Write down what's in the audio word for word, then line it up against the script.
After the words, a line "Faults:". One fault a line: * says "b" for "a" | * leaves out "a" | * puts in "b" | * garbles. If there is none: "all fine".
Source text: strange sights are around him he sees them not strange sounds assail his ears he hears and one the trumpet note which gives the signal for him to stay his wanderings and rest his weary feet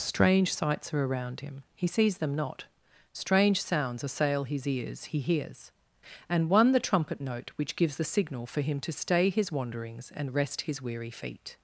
strange sights are around him he sees them not strange sounds assail his ears he hears and one the trumpet note which gives the signal for him to stay his wanderings and rest his weary feet
Faults:
all fine